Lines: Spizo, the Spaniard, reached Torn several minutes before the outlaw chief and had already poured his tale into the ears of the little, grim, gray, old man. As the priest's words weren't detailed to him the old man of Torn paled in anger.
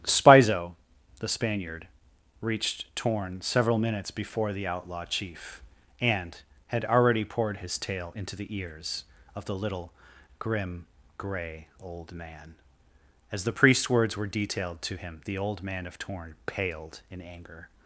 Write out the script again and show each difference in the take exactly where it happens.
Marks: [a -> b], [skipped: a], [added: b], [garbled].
Spizo, the Spaniard, reached Torn several minutes before the outlaw chief and had already poured his tale into the ears of the little, grim, gray, old man. As the priest's words [weren't -> were] detailed to him the old man of Torn paled in anger.